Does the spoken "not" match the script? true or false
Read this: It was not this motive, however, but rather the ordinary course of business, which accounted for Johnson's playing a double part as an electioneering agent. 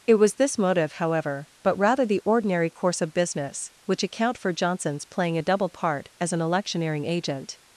false